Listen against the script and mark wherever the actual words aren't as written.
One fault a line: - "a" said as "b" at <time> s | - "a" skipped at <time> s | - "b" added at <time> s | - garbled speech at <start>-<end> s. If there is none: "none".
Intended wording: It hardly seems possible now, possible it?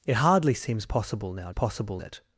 none